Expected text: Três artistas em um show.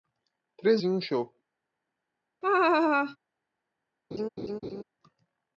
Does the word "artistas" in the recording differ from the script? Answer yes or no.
yes